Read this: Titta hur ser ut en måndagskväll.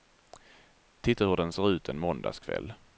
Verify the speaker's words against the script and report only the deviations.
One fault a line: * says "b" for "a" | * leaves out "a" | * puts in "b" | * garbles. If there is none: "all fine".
* puts in "den"